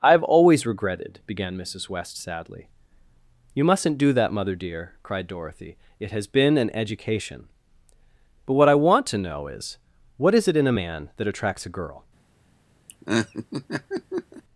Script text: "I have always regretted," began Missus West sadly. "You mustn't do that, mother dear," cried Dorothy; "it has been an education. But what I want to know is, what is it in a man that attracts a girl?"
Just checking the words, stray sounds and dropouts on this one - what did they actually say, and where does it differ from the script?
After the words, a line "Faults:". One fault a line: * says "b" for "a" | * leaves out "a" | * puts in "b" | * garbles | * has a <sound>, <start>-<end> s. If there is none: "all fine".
"I have always regretted," began Missus West sadly. "You mustn't do that, mother dear," cried Dorothy; "it has been an education. But what I want to know is, what is it in a man that attracts a girl?"
Faults:
* has a laugh, 12.9-14.4 s